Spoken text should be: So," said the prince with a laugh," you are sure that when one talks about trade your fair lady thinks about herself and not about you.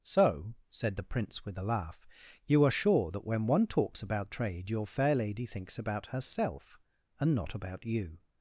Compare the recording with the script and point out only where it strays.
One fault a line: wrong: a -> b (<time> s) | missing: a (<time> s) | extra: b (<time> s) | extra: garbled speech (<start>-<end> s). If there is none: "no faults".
no faults